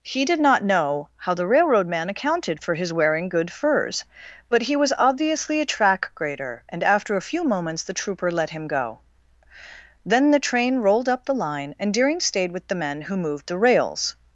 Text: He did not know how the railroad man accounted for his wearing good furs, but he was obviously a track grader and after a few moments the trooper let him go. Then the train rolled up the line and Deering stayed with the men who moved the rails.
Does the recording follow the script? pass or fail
pass